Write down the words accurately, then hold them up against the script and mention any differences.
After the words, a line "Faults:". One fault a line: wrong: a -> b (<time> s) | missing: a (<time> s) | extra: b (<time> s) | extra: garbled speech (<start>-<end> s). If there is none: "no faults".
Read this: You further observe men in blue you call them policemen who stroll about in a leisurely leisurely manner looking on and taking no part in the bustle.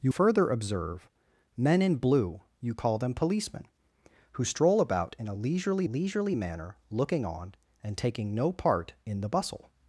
You further observe men in blue you call them policemen who stroll about in a leisurely leisurely manner looking on and taking no part in the bustle.
Faults:
no faults